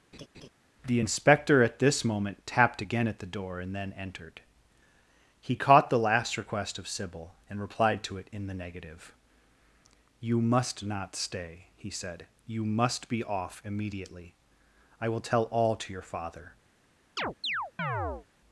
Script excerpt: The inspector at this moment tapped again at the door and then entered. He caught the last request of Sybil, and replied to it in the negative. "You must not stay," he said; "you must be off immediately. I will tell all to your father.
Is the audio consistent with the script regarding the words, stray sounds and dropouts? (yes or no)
no